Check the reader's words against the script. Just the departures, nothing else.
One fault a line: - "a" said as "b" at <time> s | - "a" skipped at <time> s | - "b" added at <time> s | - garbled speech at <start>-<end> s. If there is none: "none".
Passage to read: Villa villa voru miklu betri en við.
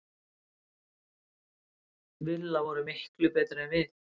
- "villa" skipped at 2.6 s